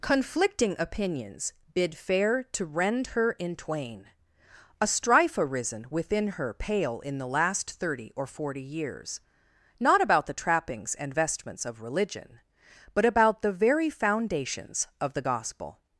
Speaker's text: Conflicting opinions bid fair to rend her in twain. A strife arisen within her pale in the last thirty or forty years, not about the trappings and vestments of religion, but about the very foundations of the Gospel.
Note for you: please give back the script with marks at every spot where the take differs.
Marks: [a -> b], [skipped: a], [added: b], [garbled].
Conflicting opinions bid fair to rend her in twain. A strife arisen within her pale in the last thirty or forty years, not about the trappings and vestments of religion, but about the very foundations of the Gospel.